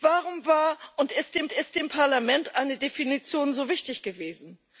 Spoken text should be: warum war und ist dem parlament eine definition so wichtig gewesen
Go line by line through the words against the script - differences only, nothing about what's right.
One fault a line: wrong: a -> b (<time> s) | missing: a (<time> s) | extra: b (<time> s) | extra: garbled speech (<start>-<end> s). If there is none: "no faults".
extra: ist dem (1.5 s)